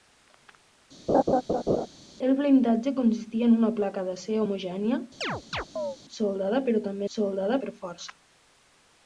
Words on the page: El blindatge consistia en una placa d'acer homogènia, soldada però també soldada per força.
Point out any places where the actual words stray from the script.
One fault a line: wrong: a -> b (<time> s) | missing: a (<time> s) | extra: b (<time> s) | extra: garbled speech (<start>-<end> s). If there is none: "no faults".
no faults